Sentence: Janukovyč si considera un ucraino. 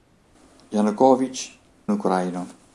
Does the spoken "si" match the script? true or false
false